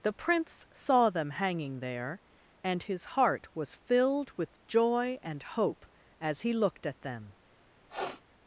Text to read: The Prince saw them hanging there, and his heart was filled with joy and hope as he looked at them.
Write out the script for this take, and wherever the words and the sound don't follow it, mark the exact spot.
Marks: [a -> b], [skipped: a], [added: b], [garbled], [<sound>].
The Prince saw them hanging there, and his heart was filled with joy and hope as he looked at them. [sniff]